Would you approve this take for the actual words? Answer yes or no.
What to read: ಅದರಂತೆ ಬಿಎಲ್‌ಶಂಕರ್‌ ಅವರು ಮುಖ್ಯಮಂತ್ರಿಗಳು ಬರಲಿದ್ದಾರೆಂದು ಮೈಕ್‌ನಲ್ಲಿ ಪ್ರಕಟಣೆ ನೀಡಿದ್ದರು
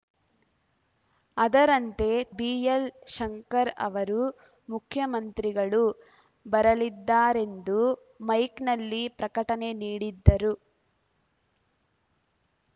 yes